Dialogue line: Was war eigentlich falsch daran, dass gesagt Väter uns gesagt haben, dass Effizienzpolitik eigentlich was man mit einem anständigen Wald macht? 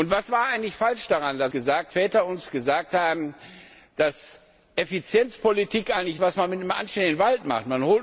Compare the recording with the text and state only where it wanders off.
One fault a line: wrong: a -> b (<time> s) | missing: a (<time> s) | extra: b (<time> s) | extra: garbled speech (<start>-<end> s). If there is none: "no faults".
no faults